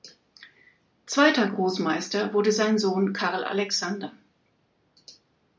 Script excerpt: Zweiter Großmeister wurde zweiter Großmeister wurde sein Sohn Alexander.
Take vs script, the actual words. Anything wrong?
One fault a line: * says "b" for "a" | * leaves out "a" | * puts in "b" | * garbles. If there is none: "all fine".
* leaves out "zweiter Großmeister wurde"
* puts in "Karl"